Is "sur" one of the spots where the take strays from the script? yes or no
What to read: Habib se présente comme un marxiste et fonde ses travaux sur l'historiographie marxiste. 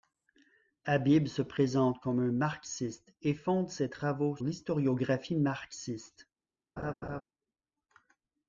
yes